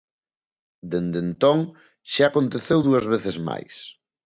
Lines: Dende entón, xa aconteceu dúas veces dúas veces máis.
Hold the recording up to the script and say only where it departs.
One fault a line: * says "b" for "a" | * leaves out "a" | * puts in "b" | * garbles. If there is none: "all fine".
* leaves out "dúas veces"